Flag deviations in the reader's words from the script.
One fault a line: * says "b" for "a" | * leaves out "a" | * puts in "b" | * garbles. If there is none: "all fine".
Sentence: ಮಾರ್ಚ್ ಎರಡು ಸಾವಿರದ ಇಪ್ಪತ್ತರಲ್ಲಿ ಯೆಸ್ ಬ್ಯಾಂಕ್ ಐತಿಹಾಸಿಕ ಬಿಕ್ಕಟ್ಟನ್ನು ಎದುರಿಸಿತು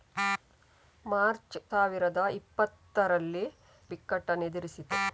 * leaves out "ಎರಡು"
* leaves out "ಯೆಸ್ ಬ್ಯಾಂಕ್ ಐತಿಹಾಸಿಕ"